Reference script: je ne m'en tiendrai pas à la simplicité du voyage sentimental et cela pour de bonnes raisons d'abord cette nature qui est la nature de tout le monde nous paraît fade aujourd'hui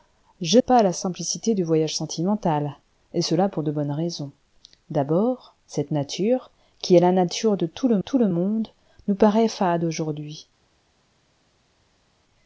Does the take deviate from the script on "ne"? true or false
true